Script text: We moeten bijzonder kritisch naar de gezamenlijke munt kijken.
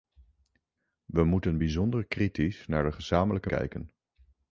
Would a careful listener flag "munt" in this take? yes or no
yes